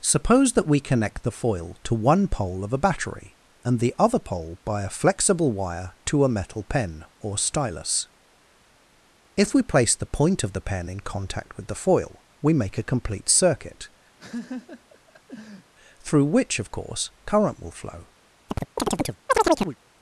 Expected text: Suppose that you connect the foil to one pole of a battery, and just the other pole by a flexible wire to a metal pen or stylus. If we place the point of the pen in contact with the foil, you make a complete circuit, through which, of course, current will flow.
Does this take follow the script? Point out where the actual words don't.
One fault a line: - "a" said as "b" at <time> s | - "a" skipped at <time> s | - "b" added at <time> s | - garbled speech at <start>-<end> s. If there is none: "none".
- "you" said as "we" at 0.7 s
- "just" skipped at 3.8 s
- "you" said as "we" at 12.4 s